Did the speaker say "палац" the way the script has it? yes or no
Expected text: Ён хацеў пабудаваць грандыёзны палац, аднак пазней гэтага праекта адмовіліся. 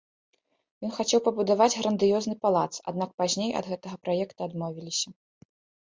yes